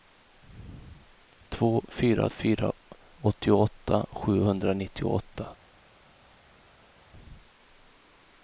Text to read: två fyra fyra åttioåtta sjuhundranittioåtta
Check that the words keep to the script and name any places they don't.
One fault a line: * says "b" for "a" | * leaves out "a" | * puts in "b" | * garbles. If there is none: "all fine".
all fine